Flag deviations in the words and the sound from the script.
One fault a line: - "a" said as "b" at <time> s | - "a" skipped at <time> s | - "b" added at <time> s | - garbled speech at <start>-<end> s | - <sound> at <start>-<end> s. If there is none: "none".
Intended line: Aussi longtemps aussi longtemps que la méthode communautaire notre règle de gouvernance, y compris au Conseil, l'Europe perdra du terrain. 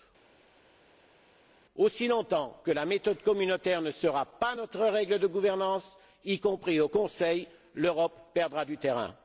- "aussi longtemps" skipped at 2.6 s
- "ne sera pas" added at 3.8 s